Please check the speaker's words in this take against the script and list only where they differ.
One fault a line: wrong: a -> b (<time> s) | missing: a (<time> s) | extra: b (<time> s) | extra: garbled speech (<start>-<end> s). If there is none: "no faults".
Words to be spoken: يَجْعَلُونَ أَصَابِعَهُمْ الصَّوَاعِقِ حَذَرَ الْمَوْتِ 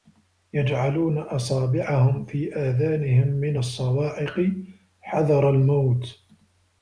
extra: فِي آذَانِهِمْ مِنَ (2.2 s)